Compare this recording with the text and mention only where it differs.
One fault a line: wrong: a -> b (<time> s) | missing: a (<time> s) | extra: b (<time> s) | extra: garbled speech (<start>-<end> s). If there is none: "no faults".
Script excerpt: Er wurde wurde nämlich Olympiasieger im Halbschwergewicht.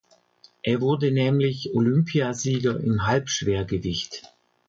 missing: wurde (1.1 s)